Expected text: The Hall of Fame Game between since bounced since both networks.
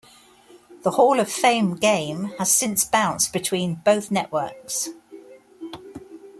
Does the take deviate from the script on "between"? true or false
true